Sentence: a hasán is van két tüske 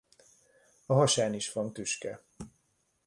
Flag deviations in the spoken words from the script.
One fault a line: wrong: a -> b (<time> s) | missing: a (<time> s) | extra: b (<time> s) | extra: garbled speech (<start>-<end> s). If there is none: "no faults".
missing: két (1.7 s)